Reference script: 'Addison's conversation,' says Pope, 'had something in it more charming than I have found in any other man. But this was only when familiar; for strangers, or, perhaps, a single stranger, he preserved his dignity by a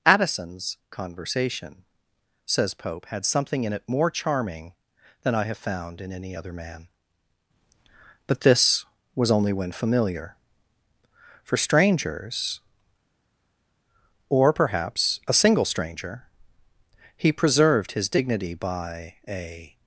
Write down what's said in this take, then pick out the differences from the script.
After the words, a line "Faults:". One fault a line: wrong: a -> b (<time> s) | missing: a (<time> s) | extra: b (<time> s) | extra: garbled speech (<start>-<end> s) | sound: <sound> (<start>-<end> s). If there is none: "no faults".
'Addison's conversation,' says Pope, 'had something in it more charming than I have found in any other man. But this was only when familiar; for strangers, or, perhaps, a single stranger, he preserved his dignity by a
Faults:
no faults